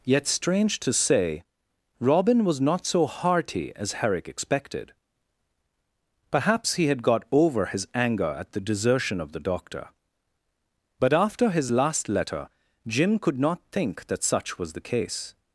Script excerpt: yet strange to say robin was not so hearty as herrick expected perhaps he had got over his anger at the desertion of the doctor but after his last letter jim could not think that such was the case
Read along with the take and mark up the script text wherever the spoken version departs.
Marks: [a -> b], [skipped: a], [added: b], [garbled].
yet strange to say robin was not so hearty as herrick expected perhaps he had got over his anger at the desertion of the doctor but after his last letter jim could not think that such was the case